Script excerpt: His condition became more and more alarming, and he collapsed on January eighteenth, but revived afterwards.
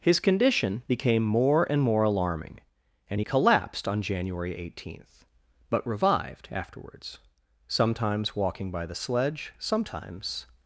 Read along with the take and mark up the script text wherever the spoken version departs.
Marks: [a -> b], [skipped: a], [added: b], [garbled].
His condition became more and more alarming, and he collapsed on January eighteenth, but revived afterwards. [added: Sometimes walking by the sledge sometimes]